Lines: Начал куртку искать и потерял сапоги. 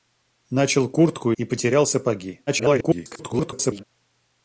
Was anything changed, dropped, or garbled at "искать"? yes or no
yes